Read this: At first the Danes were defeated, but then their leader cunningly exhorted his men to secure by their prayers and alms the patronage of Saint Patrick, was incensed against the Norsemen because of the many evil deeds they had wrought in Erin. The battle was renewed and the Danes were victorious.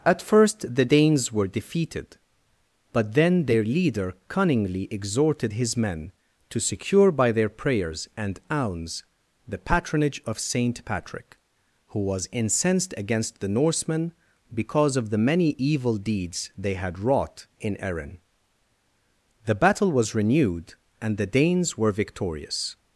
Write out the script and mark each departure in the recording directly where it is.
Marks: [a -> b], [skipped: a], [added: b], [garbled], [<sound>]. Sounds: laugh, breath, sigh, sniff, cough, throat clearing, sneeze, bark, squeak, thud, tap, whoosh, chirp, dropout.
At first the Danes were defeated, but then their leader cunningly exhorted his men to secure by their prayers and alms the patronage of Saint Patrick, [added: who] was incensed against the Norsemen because of the many evil deeds they had wrought in Erin. The battle was renewed and the Danes were victorious.